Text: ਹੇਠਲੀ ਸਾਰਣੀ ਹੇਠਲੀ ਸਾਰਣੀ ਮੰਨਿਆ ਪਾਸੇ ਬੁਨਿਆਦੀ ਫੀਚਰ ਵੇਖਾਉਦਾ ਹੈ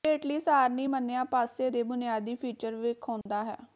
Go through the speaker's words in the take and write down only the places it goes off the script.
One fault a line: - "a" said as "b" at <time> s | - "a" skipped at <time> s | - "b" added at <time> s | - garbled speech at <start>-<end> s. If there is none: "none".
- "ਹੇਠਲੀ ਸਾਰਣੀ" skipped at 0.8 s
- "ਦੇ" added at 1.7 s